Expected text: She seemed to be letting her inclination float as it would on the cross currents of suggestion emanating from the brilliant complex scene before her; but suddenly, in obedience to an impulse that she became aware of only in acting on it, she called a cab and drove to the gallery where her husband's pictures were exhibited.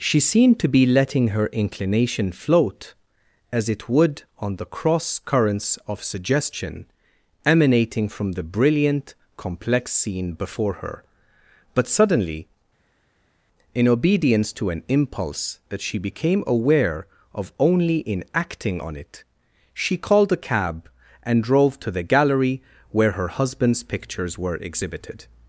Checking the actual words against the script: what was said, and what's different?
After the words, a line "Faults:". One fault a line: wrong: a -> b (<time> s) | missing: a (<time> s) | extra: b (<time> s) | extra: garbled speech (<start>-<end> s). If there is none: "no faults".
She seemed to be letting her inclination float as it would on the cross currents of suggestion emanating from the brilliant complex scene before her; but suddenly, in obedience to an impulse that she became aware of only in acting on it, she called a cab and drove to the gallery where her husband's pictures were exhibited.
Faults:
no faults